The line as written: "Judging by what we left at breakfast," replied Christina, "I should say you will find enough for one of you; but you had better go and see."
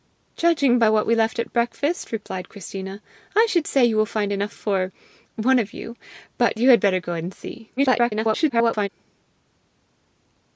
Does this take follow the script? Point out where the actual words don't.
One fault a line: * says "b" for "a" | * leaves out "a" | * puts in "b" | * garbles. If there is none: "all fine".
* garbles